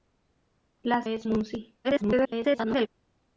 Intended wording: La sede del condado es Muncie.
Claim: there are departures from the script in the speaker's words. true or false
true